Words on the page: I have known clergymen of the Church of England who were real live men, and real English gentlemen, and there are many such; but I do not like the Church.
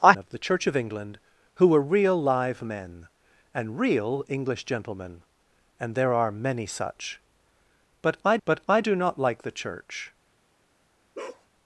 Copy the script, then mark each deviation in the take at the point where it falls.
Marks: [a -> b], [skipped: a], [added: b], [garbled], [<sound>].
I [skipped: have known clergymen] of the Church of England who were real live men, and real English gentlemen, and there are many such; but I [added: but I] do not like the Church. [bark]